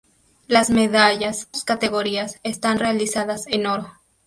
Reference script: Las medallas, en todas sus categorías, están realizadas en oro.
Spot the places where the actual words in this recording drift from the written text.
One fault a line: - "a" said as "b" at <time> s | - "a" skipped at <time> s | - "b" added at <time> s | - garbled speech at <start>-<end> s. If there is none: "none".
- "en todas" skipped at 1.5 s